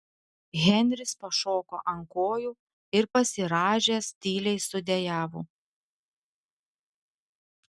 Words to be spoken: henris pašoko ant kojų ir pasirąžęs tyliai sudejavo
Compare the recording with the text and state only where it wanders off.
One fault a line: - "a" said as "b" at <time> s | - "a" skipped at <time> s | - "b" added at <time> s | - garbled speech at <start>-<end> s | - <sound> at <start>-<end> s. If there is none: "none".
none